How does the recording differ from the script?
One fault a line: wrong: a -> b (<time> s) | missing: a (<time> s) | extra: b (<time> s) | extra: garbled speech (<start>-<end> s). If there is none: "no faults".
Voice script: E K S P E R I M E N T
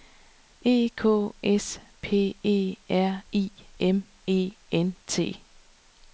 no faults